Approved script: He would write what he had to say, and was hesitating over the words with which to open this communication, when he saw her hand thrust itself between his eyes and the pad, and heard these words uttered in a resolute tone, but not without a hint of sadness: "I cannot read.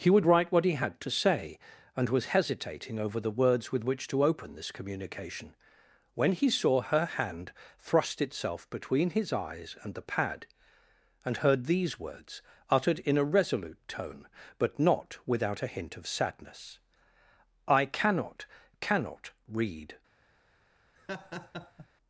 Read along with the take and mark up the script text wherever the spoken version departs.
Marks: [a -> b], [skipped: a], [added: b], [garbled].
He would write what he had to say, and was hesitating over the words with which to open this communication, when he saw her hand thrust itself between his eyes and the pad, and heard these words uttered in a resolute tone, but not without a hint of sadness: "I cannot [added: cannot] read.